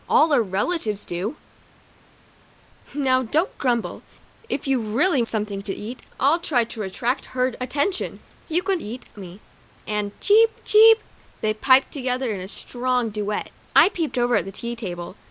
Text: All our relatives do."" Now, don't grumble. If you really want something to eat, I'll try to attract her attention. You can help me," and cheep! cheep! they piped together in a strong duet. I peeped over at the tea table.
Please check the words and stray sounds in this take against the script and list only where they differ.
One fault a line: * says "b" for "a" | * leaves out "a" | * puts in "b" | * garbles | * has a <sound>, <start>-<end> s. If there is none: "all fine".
* leaves out "want"
* says "eat" for "help"